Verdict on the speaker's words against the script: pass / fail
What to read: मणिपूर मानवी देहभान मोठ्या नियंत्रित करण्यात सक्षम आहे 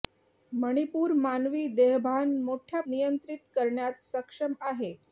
pass